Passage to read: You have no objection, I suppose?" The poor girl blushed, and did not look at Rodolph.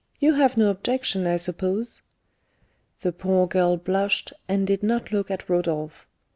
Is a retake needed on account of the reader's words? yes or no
no